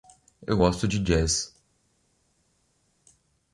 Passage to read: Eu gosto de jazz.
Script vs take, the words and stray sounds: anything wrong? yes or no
no